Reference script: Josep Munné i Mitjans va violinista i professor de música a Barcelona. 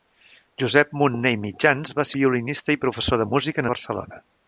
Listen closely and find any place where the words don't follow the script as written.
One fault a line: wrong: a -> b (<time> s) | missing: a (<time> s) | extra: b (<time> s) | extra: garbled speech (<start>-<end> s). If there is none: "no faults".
no faults